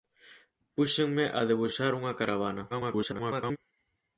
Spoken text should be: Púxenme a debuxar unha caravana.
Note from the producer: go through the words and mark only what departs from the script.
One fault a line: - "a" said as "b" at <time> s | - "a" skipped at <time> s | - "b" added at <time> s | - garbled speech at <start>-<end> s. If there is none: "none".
- garbled speech at 2.7-3.6 s